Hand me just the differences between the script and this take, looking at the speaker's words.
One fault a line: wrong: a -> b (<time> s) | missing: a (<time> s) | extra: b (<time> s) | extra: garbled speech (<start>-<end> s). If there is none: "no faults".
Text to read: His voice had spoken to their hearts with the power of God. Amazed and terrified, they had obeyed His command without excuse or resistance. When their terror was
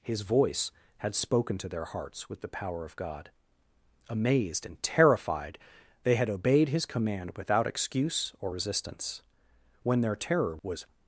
no faults